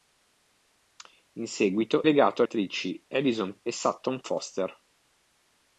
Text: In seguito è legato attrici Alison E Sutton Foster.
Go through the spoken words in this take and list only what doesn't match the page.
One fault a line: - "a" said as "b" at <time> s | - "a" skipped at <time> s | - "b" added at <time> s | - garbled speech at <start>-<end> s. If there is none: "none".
none